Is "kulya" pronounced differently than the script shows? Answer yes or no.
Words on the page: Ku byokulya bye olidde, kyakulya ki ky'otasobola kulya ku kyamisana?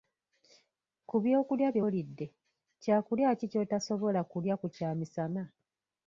no